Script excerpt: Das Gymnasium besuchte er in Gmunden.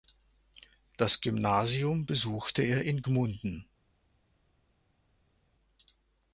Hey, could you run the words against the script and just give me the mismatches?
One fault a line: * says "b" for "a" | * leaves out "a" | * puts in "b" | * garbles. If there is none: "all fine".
all fine